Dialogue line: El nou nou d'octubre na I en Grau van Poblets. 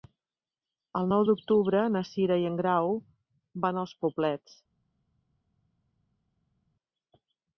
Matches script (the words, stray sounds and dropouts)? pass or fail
fail